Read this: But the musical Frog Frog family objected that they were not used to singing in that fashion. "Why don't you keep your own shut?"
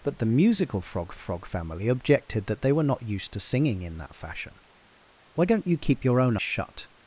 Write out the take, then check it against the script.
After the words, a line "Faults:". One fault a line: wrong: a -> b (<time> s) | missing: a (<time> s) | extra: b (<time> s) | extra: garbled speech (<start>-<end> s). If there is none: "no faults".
But the musical Frog Frog family objected that they were not used to singing in that fashion. "Why don't you keep your own shut?"
Faults:
no faults